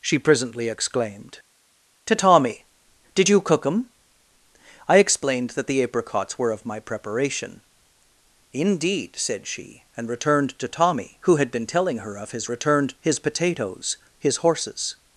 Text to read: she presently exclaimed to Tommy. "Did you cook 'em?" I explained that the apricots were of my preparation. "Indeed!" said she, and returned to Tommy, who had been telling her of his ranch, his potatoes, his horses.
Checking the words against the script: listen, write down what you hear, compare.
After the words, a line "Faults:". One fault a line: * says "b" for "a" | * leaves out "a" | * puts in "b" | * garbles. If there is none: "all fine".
she presently exclaimed to Tommy. "Did you cook 'em?" I explained that the apricots were of my preparation. "Indeed!" said she, and returned to Tommy, who had been telling her of his returned, his potatoes, his horses.
Faults:
* says "returned" for "ranch"